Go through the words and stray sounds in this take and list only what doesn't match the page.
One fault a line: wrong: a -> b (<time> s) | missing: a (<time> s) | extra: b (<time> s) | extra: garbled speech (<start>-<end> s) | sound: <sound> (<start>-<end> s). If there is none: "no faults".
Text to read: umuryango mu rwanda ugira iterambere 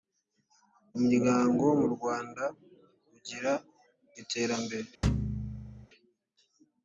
sound: thud (5.0-5.9 s)